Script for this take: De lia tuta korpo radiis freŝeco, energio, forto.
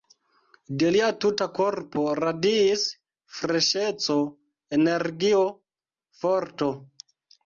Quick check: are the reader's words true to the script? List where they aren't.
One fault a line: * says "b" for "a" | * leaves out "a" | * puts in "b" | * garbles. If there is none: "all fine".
all fine